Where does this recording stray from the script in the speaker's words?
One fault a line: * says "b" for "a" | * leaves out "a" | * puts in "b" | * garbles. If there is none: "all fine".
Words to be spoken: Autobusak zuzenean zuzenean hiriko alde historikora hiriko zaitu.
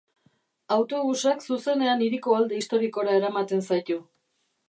* leaves out "zuzenean"
* says "eramaten" for "hiriko"